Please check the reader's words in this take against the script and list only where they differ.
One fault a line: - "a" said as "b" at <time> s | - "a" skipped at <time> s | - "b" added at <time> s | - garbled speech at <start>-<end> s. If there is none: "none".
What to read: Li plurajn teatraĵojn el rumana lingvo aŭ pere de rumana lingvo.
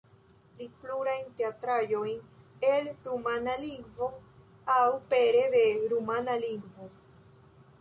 none